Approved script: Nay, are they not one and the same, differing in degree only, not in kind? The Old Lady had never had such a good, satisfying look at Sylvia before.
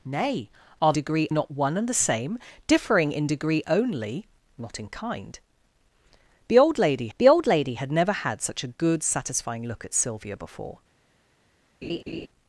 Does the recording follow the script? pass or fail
fail